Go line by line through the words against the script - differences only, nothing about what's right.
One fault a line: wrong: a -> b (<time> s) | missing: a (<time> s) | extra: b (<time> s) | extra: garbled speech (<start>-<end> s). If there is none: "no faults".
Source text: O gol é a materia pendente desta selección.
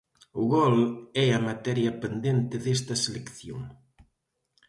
no faults